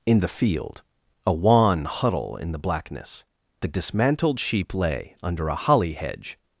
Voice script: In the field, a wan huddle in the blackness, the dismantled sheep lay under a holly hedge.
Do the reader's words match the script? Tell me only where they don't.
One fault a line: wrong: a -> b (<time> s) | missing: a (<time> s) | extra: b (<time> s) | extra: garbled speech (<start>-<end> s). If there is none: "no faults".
no faults